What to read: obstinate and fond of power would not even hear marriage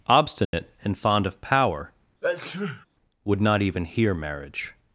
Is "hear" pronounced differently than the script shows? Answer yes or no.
no